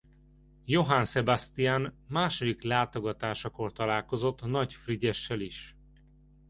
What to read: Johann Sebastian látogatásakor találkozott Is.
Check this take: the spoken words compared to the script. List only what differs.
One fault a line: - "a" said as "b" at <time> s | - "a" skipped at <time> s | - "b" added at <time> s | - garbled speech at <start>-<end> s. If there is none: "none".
- "második" added at 2.1 s
- "Nagy Frigyessel" added at 4.4 s